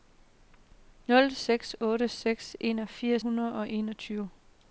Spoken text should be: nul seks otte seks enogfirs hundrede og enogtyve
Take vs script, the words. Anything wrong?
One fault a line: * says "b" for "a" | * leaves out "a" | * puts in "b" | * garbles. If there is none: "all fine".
all fine